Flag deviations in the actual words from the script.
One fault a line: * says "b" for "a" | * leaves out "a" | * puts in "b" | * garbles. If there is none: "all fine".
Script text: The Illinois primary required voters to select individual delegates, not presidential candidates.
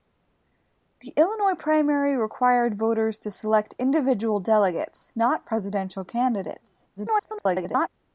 * garbles